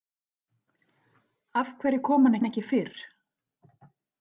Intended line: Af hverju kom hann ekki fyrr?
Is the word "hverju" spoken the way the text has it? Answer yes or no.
yes